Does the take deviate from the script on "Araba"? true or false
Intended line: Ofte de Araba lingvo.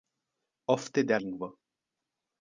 true